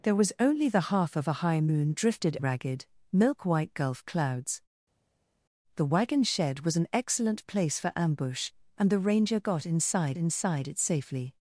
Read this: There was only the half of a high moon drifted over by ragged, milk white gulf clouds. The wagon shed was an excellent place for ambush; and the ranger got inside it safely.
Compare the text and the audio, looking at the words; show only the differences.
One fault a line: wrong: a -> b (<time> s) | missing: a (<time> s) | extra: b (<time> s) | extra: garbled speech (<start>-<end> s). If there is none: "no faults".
missing: over by (2.4 s)
extra: inside (10.2 s)